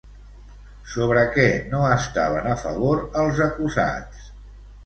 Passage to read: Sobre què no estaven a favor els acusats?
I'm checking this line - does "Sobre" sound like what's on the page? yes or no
yes